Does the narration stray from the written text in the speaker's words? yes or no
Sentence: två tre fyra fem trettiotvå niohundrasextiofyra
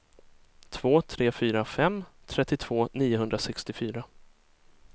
no